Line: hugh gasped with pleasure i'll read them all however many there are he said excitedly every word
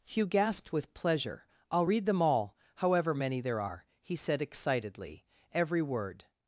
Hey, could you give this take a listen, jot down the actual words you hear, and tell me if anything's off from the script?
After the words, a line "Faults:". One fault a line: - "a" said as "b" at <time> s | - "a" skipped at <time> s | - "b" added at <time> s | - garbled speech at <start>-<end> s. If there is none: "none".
hugh gasped with pleasure i'll read them all however many there are he said excitedly every word
Faults:
none